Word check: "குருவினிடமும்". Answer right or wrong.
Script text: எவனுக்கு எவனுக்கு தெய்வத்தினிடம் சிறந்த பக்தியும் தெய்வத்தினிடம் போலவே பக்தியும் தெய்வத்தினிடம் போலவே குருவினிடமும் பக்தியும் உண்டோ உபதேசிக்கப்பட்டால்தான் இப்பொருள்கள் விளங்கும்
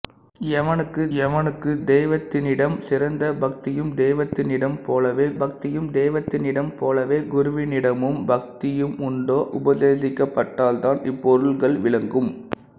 right